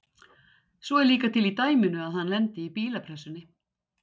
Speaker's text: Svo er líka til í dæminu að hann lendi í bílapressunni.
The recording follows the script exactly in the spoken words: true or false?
true